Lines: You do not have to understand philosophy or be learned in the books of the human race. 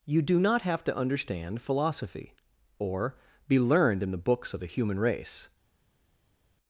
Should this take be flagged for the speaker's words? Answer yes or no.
no